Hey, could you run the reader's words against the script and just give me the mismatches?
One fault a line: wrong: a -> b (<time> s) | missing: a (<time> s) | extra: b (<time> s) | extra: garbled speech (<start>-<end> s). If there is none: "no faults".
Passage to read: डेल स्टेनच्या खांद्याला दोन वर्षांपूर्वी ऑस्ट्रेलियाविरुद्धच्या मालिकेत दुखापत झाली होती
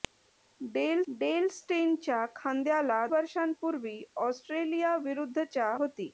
extra: डेल (1.1 s)
missing: दोन (3.1 s)
missing: मालिकेत दुखापत झाली (5.8 s)